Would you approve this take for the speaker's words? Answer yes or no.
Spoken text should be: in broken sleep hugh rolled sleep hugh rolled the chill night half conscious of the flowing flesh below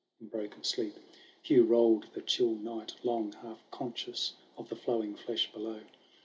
no